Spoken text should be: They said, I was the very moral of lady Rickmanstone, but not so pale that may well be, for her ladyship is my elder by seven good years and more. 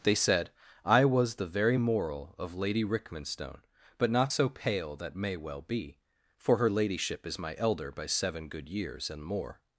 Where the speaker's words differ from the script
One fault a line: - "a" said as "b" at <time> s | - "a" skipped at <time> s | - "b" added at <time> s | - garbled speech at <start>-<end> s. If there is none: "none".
none